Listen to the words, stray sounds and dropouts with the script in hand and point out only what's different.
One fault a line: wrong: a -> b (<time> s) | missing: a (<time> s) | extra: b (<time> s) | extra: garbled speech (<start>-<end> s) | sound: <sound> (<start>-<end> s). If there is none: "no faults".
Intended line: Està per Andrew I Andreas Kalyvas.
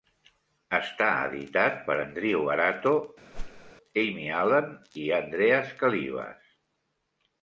extra: editat (1.2 s)
extra: Arato Amy Allen (2.5 s)
sound: whoosh (3.3-3.7 s)